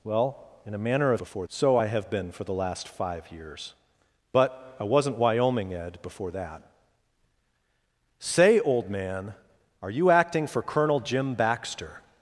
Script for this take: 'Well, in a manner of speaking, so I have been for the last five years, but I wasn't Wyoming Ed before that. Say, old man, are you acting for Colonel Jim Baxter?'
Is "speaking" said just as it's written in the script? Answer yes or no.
no